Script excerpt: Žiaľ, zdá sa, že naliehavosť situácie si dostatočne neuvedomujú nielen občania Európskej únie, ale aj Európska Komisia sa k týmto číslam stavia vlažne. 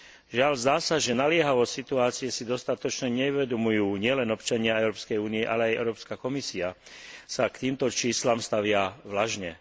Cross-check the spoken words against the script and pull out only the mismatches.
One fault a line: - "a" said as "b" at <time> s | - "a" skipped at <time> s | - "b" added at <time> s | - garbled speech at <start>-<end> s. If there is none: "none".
none